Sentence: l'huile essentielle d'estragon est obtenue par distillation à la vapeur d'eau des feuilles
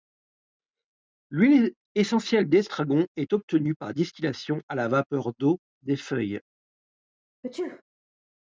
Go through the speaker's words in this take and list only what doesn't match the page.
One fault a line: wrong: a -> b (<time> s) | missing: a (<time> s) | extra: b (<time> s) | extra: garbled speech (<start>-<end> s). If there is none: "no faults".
no faults